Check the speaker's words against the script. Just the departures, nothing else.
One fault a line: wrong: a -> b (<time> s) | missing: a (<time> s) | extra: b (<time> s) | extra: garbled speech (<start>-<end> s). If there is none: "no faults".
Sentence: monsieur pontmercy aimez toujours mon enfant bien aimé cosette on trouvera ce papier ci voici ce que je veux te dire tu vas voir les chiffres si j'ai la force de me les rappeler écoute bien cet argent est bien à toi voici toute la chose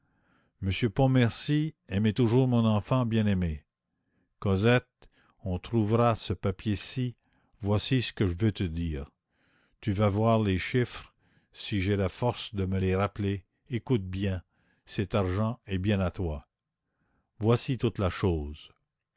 no faults